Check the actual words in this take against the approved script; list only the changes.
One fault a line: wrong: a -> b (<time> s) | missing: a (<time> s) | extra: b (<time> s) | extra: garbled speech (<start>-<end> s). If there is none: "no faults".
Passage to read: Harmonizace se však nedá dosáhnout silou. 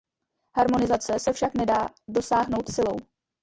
no faults